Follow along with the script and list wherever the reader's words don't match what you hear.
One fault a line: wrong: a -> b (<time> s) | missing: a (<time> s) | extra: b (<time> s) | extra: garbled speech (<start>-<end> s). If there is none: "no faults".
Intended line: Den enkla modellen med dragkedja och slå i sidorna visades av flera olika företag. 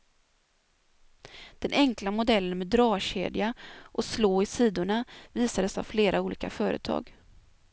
no faults